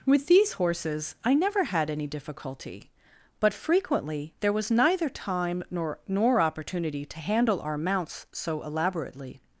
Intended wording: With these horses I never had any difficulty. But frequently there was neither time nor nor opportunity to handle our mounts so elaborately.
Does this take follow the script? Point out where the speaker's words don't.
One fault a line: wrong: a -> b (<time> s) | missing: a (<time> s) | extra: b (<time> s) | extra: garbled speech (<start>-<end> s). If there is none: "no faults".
no faults